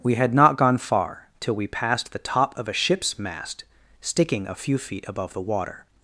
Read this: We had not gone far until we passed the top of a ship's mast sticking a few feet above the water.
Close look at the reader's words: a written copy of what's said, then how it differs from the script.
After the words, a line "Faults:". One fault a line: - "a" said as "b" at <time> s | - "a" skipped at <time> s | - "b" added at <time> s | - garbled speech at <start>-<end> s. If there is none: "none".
We had not gone far till we passed the top of a ship's mast sticking a few feet above the water.
Faults:
- "until" said as "till" at 1.4 s